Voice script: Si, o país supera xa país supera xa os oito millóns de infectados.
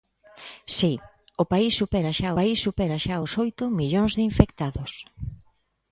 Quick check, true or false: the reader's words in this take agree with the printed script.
true